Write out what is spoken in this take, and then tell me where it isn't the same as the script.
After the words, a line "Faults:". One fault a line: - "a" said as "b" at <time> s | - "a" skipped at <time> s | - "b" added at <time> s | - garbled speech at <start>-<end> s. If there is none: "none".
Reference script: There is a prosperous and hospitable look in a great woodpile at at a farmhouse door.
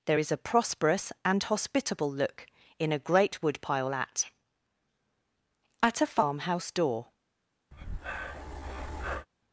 There is a prosperous and hospitable look in a great woodpile at at a farmhouse door.
Faults:
none